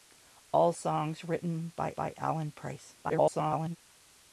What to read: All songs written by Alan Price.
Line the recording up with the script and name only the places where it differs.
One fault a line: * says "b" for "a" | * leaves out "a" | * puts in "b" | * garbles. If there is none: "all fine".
* puts in "by"
* garbles